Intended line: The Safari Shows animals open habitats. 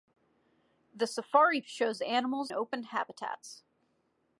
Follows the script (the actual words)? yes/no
yes